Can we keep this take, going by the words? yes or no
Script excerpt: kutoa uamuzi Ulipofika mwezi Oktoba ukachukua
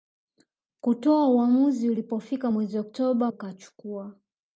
yes